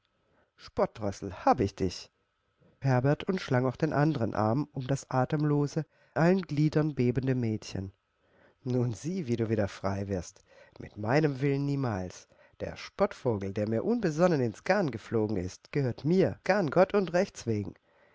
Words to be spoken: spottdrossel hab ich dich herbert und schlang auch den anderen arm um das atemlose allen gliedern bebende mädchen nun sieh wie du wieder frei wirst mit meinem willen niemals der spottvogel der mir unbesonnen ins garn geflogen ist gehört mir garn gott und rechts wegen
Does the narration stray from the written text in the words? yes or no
no